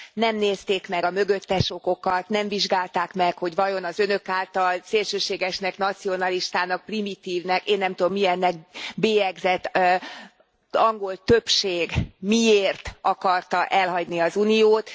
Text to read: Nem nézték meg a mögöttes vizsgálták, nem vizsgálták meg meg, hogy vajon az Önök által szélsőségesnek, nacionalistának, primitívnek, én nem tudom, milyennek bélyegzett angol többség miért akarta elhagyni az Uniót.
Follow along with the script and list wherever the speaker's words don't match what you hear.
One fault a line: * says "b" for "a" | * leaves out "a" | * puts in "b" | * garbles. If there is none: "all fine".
* says "okokat" for "vizsgálták"
* leaves out "meg"